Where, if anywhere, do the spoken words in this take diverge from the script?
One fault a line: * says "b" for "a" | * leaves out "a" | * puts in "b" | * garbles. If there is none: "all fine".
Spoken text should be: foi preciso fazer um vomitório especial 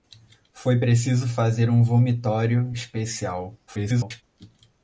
* garbles